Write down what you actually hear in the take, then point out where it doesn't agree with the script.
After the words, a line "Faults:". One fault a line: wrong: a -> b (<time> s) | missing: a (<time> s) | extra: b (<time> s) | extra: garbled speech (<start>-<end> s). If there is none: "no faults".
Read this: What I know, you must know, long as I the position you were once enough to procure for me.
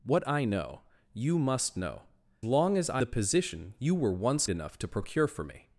What I know, you must know, long as I the position you were once enough to procure for me.
Faults:
no faults